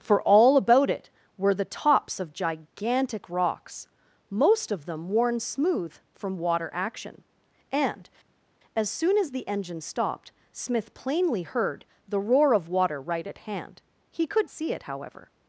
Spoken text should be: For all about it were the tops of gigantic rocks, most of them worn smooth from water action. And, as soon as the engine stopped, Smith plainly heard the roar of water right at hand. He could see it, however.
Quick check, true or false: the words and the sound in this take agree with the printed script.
true